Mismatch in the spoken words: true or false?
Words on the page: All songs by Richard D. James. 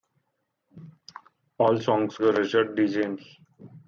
false